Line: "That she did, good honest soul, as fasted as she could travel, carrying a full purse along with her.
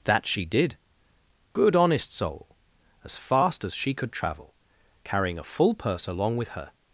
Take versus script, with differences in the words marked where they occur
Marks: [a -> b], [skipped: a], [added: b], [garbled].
"That she did, good honest soul, as [fasted -> fast] as she could travel, carrying a full purse along with her.